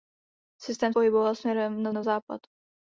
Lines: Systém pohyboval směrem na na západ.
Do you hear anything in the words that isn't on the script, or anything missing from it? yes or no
no